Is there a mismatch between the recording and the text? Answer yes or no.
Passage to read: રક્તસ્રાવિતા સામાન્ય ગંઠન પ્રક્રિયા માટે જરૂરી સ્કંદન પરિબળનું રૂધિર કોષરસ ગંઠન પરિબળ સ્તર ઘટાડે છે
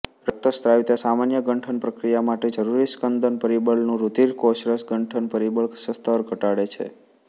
no